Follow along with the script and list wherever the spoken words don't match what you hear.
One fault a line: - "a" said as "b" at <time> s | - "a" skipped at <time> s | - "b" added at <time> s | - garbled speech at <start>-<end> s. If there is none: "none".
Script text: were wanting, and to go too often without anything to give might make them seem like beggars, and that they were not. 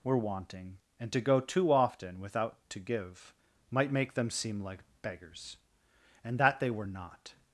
- "anything" skipped at 2.6 s